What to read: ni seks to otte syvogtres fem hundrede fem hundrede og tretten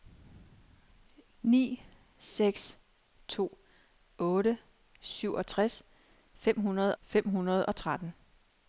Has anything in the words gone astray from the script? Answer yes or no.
no